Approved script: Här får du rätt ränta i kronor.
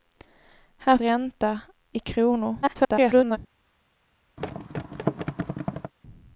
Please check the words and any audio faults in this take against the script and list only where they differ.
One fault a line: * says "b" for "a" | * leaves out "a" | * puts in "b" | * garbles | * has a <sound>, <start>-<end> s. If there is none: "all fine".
* leaves out "får du rätt"
* garbles
* has a thud, 4.4-5.9 s